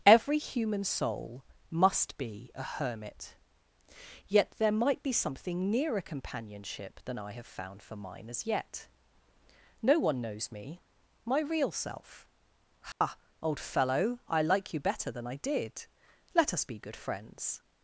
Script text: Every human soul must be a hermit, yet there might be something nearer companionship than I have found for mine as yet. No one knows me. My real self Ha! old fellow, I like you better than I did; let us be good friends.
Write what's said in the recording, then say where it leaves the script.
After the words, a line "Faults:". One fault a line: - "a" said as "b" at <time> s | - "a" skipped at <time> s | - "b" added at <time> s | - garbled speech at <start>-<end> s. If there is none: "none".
Every human soul must be a hermit, yet there might be something nearer companionship than I have found for mine as yet. No one knows me. My real self Ha! old fellow, I like you better than I did; let us be good friends.
Faults:
none